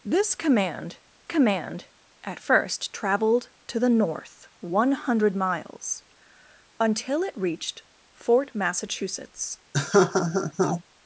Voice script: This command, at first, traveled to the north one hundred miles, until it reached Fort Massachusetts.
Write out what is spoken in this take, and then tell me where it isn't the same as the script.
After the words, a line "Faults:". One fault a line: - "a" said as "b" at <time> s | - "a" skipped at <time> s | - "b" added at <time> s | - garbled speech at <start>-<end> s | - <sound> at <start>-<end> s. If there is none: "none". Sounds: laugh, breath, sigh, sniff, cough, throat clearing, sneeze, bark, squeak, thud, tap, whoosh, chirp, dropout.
This command command, at first, traveled to the north one hundred miles, until it reached Fort Massachusetts.
Faults:
- "command" added at 1.2 s
- laugh at 9.7-10.8 s